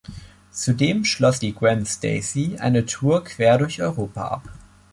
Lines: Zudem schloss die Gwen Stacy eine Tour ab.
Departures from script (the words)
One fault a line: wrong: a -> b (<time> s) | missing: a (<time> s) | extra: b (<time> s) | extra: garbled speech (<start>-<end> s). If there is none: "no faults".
extra: quer durch Europa (3.2 s)